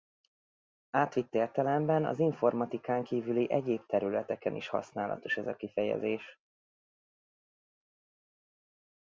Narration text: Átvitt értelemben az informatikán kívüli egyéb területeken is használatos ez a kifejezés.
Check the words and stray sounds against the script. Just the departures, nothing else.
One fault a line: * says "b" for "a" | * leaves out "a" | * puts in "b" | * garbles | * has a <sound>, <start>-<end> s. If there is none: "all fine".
all fine